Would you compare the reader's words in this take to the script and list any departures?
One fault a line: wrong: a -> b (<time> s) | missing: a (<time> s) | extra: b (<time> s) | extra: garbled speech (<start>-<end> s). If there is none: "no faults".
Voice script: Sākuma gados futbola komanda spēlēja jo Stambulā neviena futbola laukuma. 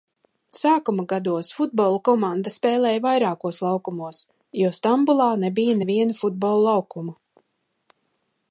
extra: vairākos laukumos (3.0 s)
extra: nebija (5.5 s)